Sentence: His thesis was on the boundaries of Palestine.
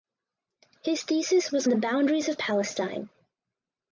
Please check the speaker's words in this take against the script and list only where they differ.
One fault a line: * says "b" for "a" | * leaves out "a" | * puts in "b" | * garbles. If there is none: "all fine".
* leaves out "on"